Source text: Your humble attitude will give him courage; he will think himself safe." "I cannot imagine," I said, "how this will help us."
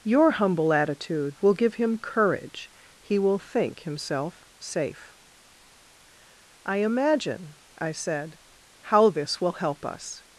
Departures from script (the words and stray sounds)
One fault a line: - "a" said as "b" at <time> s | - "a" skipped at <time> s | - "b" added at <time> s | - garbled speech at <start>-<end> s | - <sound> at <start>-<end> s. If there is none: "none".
- "cannot" skipped at 6.8 s